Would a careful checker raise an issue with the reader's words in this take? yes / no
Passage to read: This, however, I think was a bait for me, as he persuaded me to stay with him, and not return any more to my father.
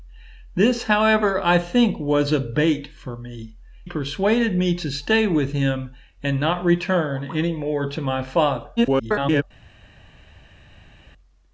yes